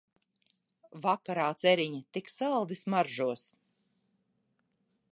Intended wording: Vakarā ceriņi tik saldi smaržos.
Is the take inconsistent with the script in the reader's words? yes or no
no